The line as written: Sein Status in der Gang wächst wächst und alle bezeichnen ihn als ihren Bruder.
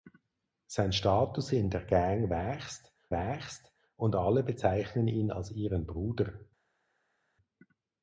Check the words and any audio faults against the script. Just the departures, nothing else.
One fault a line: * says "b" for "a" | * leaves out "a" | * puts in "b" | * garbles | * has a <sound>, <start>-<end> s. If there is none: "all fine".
all fine